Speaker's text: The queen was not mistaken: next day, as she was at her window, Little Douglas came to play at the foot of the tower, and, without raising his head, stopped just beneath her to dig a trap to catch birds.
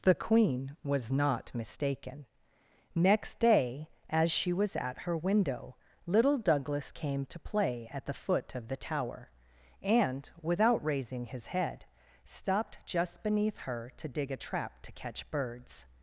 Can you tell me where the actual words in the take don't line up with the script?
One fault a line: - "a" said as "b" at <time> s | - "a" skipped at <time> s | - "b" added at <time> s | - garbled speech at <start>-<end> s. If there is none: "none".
none